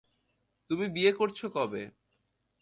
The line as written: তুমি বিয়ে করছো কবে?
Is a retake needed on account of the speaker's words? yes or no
no